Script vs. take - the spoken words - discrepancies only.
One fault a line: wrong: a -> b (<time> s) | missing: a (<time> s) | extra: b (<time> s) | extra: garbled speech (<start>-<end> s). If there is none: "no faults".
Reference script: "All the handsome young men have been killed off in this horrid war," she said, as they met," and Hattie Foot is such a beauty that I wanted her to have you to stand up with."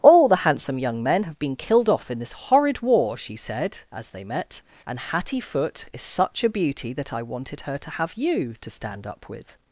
no faults